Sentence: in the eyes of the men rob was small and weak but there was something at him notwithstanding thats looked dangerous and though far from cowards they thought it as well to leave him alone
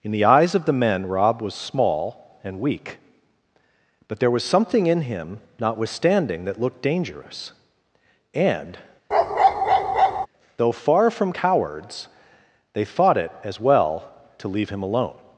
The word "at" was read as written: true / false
false